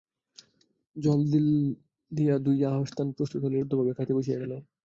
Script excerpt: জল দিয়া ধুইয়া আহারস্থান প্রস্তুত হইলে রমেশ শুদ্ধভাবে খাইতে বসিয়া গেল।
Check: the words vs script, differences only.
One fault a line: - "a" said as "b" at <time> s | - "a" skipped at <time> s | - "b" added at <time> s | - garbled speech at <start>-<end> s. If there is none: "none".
- "রমেশ" skipped at 3.6 s